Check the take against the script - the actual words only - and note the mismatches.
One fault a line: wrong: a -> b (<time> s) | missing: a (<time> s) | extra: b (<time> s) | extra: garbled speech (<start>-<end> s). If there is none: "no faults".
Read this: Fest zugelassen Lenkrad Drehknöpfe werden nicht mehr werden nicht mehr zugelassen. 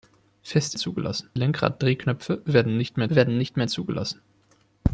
no faults